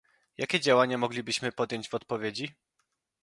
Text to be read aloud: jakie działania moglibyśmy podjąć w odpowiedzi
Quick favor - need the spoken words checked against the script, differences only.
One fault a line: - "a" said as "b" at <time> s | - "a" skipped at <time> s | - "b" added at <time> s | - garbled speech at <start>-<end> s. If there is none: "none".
none